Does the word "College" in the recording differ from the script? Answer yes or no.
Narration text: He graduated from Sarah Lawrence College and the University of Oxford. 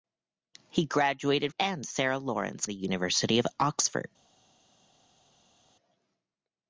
yes